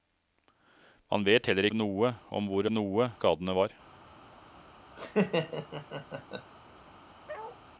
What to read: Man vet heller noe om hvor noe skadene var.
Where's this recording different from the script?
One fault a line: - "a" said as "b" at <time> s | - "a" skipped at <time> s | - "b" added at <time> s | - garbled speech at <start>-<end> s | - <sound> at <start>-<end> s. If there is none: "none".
- laugh at 5.0-6.5 s
- bark at 7.3-7.6 s